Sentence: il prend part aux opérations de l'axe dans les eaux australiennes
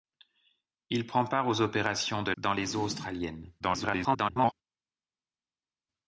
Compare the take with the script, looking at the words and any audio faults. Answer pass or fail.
fail